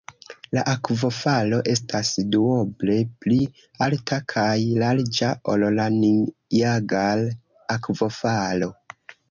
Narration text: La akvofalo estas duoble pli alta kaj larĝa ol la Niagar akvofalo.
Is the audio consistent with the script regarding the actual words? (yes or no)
yes